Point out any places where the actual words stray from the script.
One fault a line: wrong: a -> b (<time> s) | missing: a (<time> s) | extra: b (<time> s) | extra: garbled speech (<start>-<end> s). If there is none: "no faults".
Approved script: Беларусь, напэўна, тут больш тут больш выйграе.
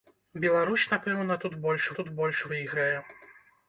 no faults